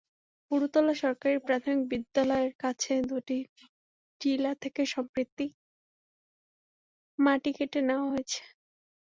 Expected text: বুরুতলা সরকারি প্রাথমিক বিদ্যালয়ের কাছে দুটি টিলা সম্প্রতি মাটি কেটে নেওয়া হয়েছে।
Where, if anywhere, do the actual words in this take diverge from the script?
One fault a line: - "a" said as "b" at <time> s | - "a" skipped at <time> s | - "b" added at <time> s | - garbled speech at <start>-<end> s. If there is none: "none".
- "থেকে" added at 4.6 s